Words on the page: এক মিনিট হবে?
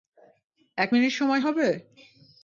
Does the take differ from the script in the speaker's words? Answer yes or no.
yes